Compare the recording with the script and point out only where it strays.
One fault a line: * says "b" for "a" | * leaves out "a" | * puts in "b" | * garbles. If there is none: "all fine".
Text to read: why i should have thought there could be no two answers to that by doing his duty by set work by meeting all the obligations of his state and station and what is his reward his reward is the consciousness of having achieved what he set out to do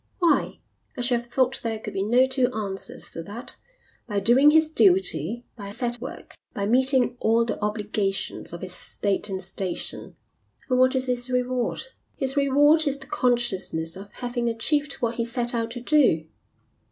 all fine